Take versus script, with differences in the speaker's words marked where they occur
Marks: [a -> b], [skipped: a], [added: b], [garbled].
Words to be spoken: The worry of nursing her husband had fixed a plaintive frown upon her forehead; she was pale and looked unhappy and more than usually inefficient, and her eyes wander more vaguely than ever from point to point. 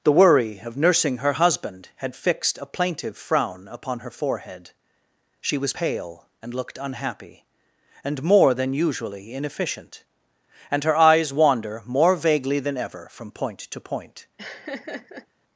The worry of nursing her husband had fixed a plaintive frown upon her forehead; she was pale and looked unhappy and more than usually inefficient, and her eyes wander more vaguely than ever from point to point.